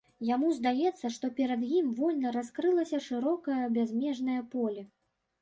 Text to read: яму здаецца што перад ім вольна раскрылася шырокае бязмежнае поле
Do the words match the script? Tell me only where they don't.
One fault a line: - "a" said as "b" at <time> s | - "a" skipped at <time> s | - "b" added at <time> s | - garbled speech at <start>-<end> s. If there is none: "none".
none